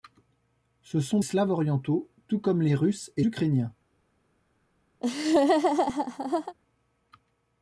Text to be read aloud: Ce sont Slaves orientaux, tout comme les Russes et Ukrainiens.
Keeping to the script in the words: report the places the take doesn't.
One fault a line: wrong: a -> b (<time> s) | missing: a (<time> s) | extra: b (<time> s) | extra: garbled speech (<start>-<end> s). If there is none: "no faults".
no faults